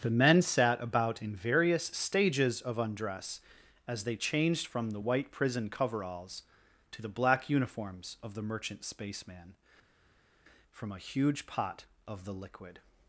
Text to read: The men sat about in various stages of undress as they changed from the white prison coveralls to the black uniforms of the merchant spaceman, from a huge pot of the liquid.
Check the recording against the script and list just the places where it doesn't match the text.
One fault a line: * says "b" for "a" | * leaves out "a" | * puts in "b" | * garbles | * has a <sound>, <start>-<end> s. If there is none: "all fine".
all fine